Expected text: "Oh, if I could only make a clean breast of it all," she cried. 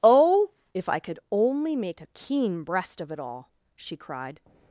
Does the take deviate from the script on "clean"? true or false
true